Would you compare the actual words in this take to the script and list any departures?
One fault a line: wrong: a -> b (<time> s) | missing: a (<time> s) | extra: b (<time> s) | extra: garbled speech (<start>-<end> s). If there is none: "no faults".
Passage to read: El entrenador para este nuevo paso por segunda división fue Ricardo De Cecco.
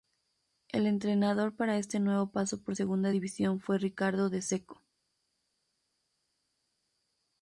no faults